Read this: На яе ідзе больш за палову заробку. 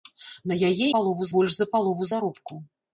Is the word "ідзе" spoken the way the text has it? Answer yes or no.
no